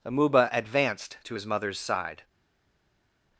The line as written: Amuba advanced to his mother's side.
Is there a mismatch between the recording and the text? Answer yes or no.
no